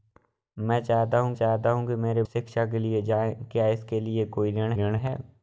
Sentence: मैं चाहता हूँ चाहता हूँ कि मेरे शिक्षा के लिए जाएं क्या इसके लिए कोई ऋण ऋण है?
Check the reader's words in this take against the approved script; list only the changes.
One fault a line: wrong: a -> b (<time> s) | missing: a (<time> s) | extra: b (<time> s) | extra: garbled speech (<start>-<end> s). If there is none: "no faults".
no faults